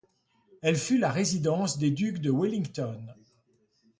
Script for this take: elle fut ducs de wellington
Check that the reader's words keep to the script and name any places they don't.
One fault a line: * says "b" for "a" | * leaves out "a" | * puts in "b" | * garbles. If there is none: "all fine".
* puts in "la résidence des"